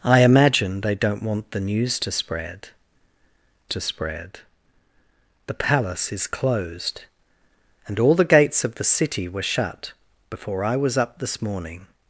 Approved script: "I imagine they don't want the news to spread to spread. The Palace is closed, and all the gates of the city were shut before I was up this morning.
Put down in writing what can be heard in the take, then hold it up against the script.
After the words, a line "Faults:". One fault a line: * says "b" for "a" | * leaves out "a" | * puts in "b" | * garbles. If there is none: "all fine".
"I imagine they don't want the news to spread to spread. The Palace is closed, and all the gates of the city were shut before I was up this morning.
Faults:
all fine